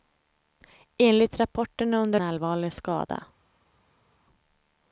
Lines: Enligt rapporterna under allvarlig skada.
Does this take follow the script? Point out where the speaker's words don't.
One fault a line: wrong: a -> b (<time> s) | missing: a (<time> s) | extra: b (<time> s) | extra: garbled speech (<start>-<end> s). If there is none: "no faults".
no faults